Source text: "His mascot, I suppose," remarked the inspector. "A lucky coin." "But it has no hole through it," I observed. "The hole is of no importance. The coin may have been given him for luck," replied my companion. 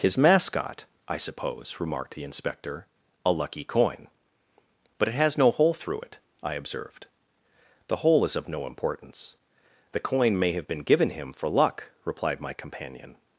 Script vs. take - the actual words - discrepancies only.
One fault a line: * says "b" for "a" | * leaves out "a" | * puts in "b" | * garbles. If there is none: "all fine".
all fine